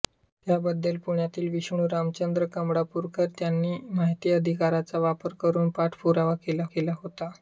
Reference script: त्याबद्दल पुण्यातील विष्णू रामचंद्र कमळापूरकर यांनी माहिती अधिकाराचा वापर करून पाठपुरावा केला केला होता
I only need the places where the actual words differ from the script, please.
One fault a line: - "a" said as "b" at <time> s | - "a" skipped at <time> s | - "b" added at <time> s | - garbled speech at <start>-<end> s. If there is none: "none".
none